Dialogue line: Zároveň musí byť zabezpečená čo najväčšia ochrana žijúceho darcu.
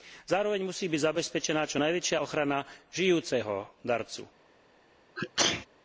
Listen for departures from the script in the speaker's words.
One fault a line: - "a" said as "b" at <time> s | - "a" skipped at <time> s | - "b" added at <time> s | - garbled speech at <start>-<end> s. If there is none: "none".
none